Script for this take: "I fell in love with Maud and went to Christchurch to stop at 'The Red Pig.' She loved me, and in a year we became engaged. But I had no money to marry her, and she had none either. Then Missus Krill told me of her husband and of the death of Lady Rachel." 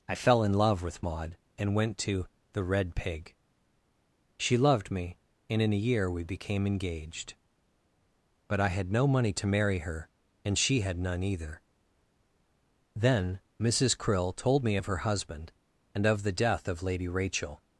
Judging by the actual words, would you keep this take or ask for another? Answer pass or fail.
fail